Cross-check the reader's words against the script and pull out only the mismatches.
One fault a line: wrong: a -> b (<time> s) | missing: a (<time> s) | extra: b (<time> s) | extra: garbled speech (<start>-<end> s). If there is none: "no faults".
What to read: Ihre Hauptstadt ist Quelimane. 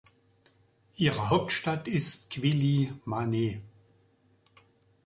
no faults